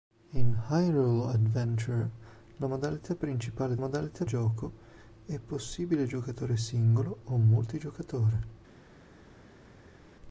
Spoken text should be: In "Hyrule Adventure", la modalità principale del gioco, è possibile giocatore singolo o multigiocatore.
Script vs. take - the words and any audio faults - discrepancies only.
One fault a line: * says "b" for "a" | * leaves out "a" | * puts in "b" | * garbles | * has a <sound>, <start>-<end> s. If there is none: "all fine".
* says "modalità" for "del"